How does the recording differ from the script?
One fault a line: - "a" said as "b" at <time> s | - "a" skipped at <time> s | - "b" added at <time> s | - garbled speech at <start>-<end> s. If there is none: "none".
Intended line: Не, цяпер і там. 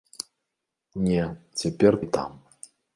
none